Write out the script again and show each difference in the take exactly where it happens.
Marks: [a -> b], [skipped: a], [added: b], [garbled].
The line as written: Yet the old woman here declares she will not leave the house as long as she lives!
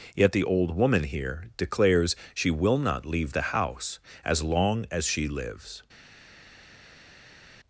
Yet the old woman here declares she will not leave the house as long as she lives!